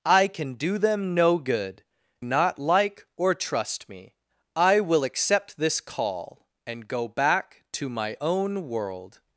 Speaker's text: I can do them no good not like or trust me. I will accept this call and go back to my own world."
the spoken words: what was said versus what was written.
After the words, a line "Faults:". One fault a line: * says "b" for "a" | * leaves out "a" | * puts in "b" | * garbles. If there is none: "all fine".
I can do them no good not like or trust me. I will accept this call and go back to my own world."
Faults:
all fine